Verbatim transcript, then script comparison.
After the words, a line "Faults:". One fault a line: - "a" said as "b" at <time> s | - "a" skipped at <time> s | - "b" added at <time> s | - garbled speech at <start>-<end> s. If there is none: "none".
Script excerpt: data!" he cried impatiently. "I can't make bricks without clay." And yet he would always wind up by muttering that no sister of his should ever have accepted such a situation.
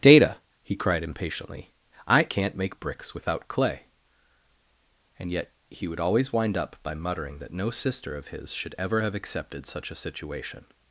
data!" he cried impatiently. "I can't make bricks without clay." And yet he would always wind up by muttering that no sister of his should ever have accepted such a situation.
Faults:
none